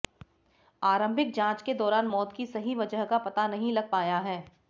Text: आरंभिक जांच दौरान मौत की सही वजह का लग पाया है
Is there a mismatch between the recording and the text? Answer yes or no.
yes